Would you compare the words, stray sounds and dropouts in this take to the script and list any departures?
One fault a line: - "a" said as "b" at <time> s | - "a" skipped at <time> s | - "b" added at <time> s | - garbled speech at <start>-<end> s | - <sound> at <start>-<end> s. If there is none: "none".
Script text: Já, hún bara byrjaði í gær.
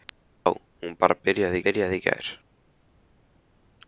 - "byrjaði" added at 1.6 s